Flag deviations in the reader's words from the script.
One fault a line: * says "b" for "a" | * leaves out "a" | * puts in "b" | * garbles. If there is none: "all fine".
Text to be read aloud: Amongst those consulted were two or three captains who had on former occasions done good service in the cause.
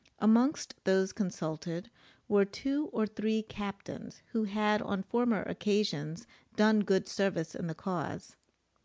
all fine